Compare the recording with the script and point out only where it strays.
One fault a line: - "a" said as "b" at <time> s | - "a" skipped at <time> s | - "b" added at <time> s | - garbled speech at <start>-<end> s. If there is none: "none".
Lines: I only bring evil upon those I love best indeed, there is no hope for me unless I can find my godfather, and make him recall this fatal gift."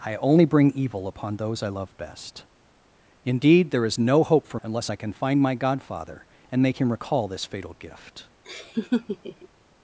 - "me" skipped at 4.6 s